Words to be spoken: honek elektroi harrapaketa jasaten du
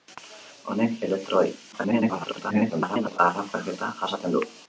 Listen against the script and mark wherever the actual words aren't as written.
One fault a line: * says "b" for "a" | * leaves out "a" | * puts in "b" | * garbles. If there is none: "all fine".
* garbles